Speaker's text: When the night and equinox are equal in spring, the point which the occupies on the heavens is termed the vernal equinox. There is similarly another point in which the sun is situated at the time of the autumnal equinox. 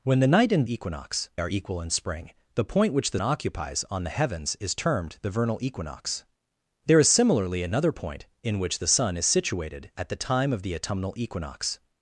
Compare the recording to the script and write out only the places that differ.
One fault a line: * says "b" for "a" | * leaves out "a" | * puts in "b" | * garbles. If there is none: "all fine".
all fine